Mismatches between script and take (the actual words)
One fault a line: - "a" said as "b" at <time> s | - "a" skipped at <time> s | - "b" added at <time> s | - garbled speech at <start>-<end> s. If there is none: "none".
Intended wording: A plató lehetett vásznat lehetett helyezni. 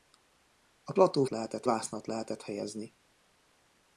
none